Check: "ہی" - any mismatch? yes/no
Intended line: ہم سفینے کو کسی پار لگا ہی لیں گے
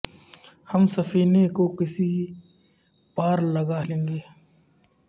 yes